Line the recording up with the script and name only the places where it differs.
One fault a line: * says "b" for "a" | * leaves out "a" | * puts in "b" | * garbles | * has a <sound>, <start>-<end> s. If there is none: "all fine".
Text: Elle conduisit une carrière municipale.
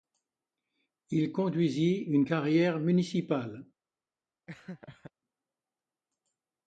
* says "Il" for "Elle"
* has a laugh, 4.5-5.1 s